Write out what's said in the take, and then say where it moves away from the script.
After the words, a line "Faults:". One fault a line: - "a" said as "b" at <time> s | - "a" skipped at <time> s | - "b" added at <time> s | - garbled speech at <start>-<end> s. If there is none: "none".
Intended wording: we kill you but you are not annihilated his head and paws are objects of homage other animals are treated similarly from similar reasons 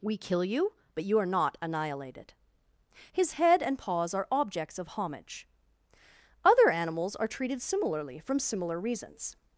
we kill you but you are not annihilated his head and paws are objects of homage other animals are treated similarly from similar reasons
Faults:
none